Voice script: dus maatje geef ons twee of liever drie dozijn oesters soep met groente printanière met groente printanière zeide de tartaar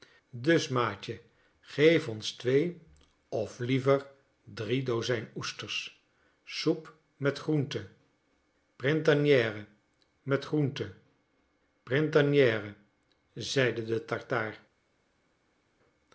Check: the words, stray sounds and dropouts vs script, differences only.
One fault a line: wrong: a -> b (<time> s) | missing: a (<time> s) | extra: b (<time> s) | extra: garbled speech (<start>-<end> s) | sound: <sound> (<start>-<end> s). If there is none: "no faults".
no faults